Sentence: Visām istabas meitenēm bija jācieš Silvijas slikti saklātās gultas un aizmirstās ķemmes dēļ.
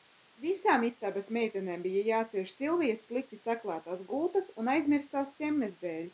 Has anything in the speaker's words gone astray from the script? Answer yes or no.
no